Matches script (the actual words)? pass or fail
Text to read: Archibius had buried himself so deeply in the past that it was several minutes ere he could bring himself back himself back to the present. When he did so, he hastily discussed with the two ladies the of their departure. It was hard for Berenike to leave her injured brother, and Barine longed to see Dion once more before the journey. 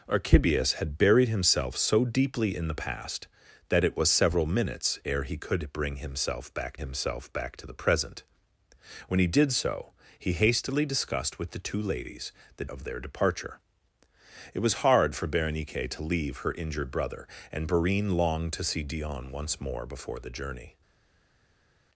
pass